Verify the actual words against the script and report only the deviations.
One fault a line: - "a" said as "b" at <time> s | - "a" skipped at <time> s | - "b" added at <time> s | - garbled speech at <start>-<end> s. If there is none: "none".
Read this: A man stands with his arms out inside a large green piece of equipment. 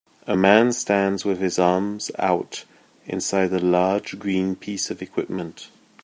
none